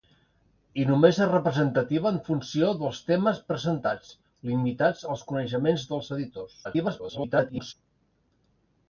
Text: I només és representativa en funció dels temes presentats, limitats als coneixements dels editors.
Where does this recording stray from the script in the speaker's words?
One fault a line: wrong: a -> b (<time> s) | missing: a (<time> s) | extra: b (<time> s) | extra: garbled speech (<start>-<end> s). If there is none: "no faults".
extra: garbled speech (6.6-7.7 s)